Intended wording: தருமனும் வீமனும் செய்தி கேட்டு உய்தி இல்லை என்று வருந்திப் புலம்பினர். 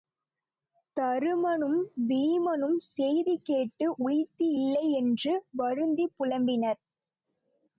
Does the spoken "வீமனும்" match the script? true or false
true